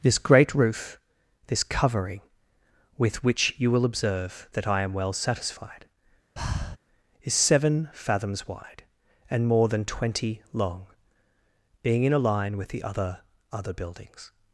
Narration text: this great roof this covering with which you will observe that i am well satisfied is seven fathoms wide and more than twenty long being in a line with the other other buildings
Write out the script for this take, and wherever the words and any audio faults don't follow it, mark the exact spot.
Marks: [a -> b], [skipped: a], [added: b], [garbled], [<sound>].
this great roof this covering with which you will observe that i am well satisfied [breath] is seven fathoms wide and more than twenty long being in a line with the other other buildings